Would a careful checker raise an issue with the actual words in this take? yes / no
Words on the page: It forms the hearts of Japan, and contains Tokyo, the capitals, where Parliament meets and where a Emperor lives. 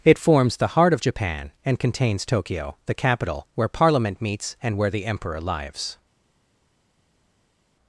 yes